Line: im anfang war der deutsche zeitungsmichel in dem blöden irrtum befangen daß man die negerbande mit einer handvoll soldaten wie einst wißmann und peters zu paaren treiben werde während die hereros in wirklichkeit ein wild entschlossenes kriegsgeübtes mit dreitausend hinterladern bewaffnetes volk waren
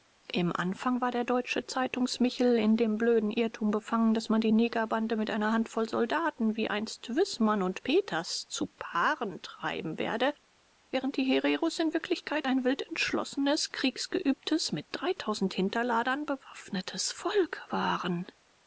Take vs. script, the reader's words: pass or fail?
pass